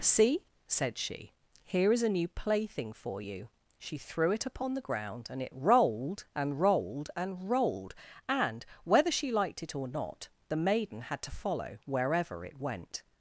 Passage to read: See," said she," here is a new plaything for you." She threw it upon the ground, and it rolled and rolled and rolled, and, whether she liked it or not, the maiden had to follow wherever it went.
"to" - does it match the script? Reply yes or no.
yes